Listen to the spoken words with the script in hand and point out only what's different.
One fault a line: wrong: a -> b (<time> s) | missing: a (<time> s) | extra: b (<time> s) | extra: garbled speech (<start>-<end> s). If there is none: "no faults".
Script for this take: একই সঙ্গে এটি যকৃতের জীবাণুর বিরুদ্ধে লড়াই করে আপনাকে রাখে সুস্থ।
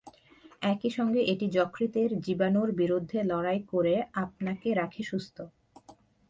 no faults